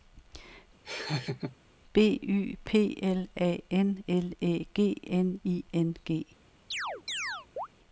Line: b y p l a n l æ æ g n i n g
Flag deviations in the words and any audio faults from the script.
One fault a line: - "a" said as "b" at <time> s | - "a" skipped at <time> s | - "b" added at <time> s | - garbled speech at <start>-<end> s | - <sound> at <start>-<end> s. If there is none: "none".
- laugh at 0.8-1.6 s
- "æ" skipped at 4.7 s
- chirp at 6.7-7.7 s